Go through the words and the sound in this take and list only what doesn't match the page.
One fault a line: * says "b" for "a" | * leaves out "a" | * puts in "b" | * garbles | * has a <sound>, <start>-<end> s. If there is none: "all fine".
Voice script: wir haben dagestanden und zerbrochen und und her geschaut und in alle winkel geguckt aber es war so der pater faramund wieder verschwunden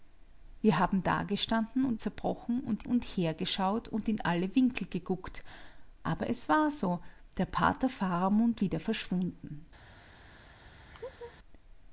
* has a laugh, 10.9-11.4 s